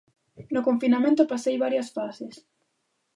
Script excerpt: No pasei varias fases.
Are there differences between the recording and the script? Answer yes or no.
yes